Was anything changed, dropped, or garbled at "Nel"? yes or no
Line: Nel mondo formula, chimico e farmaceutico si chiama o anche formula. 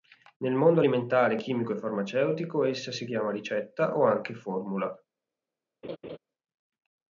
no